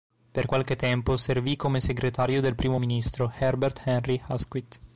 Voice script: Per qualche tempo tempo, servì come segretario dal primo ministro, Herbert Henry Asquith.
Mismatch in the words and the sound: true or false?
true